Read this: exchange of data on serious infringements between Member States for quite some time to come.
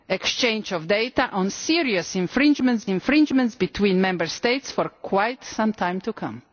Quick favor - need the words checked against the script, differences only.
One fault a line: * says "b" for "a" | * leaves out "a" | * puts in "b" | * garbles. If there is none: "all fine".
* puts in "infringements"